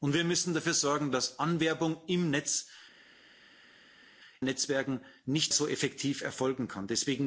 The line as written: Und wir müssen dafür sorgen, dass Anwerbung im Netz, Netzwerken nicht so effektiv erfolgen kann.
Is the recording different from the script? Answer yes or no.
no